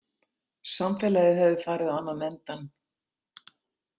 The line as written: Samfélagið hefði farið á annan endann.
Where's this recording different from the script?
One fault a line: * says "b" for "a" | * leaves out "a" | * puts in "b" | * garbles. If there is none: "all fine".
all fine